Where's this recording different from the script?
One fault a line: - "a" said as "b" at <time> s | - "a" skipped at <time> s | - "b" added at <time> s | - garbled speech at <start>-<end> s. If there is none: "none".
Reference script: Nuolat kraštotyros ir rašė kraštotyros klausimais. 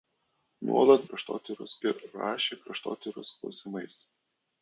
none